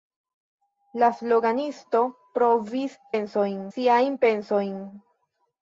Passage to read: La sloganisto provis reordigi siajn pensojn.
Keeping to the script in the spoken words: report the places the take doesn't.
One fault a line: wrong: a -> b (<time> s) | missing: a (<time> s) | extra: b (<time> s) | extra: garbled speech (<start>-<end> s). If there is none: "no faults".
wrong: reordigi -> pensojn (3.1 s)